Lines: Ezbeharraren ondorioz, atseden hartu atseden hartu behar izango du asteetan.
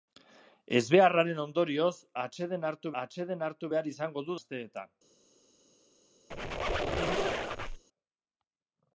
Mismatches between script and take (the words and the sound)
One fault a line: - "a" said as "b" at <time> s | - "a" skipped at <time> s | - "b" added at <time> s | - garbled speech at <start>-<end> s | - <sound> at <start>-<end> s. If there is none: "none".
- squeak at 6.3-7.8 s